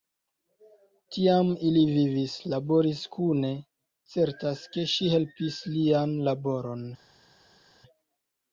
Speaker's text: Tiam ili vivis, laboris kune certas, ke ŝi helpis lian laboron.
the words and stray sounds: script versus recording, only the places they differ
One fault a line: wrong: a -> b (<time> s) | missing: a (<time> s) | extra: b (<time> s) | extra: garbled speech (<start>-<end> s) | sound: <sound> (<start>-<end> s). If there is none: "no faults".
no faults